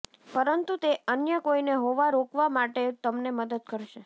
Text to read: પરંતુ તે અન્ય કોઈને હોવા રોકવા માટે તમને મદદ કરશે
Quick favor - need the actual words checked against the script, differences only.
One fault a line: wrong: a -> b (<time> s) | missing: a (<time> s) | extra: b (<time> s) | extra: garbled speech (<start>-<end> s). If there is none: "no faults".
no faults